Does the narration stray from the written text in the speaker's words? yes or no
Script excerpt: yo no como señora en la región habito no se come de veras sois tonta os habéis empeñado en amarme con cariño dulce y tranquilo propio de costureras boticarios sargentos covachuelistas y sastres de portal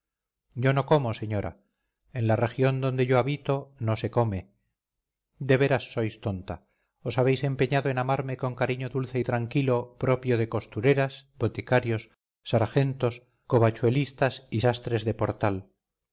yes